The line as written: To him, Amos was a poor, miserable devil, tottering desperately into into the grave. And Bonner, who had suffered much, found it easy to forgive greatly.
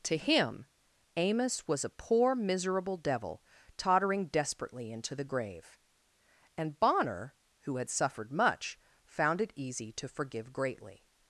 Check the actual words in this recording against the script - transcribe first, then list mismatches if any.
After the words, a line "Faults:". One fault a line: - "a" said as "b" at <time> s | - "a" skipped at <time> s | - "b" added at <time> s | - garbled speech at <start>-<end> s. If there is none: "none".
To him, Amos was a poor, miserable devil, tottering desperately into the grave. And Bonner, who had suffered much, found it easy to forgive greatly.
Faults:
- "into" skipped at 5.1 s